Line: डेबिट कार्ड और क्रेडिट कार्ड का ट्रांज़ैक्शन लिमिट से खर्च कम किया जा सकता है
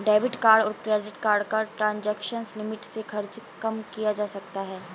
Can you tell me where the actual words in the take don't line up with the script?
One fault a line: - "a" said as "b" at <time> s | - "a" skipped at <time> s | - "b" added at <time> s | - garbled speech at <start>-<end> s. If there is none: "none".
none